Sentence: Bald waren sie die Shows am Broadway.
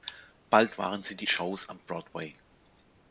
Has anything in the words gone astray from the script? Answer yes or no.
no